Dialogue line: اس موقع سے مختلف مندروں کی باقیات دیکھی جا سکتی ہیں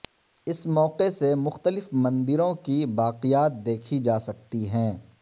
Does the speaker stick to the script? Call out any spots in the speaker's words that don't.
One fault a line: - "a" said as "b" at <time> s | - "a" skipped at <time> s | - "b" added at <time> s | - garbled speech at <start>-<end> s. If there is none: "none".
none